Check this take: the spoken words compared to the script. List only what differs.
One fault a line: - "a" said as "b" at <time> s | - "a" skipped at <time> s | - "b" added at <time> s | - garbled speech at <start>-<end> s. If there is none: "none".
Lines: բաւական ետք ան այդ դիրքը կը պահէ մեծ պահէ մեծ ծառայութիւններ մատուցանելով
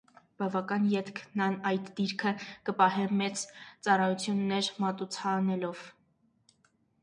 - "պահէ մեծ" skipped at 3.4 s